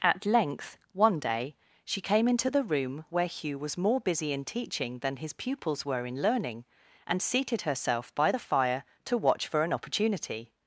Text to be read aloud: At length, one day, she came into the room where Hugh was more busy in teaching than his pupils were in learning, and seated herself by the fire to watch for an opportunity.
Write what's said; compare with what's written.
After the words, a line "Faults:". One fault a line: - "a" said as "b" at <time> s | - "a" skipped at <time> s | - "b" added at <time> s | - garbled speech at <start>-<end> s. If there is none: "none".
At length, one day, she came into the room where Hugh was more busy in teaching than his pupils were in learning, and seated herself by the fire to watch for an opportunity.
Faults:
none